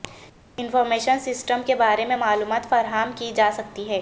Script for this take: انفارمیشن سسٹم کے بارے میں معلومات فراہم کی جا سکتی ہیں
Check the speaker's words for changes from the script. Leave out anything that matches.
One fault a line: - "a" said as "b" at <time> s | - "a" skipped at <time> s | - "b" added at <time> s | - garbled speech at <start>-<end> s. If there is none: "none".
none